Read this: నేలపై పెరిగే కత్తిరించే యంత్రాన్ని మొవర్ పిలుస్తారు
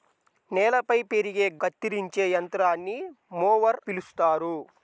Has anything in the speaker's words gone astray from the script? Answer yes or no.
no